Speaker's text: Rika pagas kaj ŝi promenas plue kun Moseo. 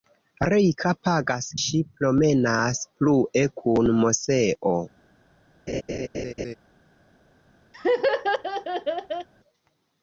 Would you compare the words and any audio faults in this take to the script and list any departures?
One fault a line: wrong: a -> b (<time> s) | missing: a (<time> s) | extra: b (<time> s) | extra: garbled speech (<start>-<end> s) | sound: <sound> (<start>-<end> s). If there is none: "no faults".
missing: kaj (1.5 s)
sound: laugh (5.7-6.5 s)
sound: laugh (7.7-9.3 s)